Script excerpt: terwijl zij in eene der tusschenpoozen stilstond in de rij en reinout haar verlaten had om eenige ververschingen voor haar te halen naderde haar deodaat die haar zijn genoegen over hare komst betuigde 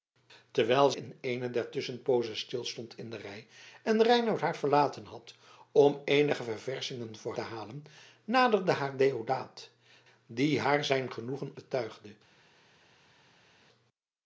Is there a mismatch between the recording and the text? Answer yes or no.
yes